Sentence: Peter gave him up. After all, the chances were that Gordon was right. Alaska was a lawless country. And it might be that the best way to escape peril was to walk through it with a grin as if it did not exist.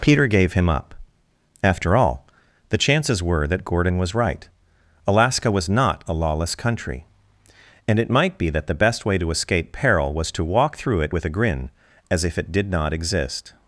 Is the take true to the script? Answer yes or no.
no